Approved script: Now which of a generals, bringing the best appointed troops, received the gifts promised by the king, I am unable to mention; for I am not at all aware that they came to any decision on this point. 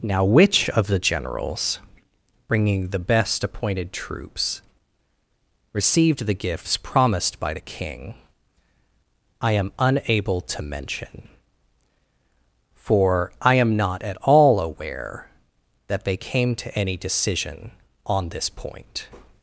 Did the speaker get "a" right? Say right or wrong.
wrong